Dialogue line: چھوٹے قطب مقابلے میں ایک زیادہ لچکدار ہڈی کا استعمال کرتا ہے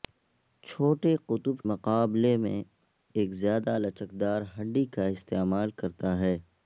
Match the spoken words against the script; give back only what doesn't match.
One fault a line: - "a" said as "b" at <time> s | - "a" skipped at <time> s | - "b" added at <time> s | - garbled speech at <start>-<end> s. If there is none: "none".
none